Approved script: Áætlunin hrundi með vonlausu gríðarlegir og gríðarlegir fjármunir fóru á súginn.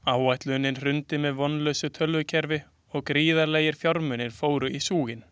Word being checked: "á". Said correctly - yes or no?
no